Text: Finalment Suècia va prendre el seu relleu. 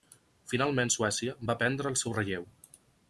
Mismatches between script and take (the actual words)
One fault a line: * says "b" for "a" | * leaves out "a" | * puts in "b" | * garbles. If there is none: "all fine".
all fine